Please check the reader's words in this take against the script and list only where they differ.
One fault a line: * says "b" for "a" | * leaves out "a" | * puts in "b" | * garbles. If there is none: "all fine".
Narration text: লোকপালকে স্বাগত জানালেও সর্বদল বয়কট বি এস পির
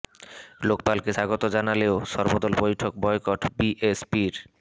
* puts in "বৈঠক"